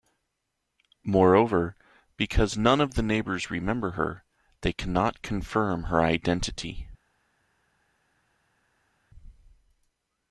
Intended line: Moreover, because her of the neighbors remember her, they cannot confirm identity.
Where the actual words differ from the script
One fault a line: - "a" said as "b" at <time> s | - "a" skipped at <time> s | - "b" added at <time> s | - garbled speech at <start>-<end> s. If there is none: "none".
- "her" said as "none" at 2.6 s
- "her" added at 5.8 s